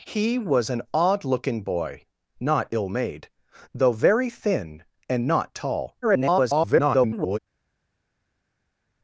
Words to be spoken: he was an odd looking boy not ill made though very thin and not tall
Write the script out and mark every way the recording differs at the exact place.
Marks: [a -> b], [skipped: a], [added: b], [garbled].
he was an odd looking boy not ill made though very thin and not tall [garbled]